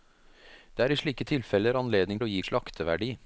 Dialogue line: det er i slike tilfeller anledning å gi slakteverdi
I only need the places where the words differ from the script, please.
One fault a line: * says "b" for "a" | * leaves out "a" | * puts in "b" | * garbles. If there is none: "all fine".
all fine